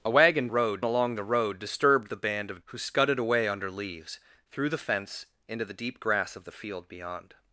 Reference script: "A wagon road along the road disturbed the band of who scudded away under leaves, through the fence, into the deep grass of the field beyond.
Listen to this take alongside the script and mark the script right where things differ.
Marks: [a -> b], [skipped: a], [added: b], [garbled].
"A wagon road along the road disturbed the band of who scudded away under leaves, through the fence, into the deep grass of the field beyond.